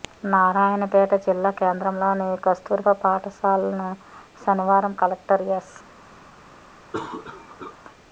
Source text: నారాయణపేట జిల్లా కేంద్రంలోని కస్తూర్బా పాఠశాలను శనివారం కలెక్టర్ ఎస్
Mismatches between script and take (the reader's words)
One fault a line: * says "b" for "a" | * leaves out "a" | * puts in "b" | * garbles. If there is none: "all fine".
all fine